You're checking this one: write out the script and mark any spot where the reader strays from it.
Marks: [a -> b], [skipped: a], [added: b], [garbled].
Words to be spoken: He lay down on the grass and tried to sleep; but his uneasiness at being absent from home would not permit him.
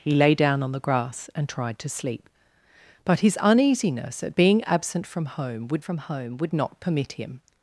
He lay down on the grass and tried to sleep; but his uneasiness at being absent from home would [added: from home would] not permit him.